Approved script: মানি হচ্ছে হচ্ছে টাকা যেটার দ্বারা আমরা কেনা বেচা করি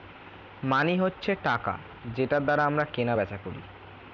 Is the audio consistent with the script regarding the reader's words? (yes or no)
no